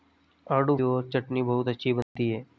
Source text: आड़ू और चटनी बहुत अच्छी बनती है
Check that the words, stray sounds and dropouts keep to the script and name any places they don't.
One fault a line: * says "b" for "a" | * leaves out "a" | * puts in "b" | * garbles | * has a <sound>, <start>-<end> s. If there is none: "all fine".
* has a dropout, 2.0-2.2 s